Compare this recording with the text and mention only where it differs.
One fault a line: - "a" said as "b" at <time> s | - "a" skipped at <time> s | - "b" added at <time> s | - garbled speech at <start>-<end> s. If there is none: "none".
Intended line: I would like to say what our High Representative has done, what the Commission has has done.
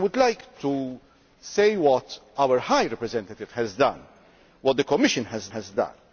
none